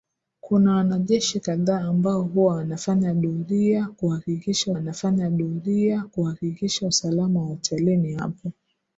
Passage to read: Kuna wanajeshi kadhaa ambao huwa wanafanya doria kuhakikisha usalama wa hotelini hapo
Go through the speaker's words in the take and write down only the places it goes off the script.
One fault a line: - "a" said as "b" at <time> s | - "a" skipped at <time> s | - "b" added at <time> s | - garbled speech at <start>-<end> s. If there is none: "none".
- "wanafanya doria kuhakikisha" added at 4.7 s